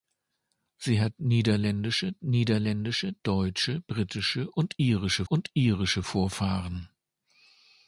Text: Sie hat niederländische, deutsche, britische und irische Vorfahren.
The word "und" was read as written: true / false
true